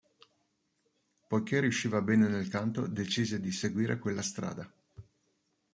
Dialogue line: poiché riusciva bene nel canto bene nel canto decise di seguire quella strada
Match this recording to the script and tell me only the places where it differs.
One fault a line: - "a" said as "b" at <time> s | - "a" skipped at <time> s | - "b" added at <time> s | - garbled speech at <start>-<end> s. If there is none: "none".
- "bene nel canto" skipped at 2.8 s